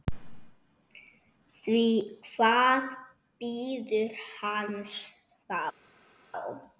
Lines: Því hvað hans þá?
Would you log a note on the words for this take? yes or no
yes